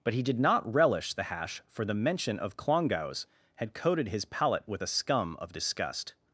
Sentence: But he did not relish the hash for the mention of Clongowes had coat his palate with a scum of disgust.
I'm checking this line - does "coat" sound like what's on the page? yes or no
no